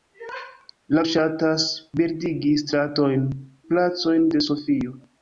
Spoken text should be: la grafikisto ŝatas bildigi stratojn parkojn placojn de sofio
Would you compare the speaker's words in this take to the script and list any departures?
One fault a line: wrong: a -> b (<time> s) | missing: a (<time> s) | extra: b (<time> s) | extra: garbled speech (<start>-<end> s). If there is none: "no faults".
missing: grafikisto (1.0 s)
missing: parkojn (3.3 s)